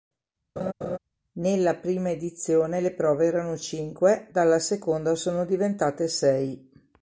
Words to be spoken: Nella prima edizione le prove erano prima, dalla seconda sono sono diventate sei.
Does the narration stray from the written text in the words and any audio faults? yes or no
yes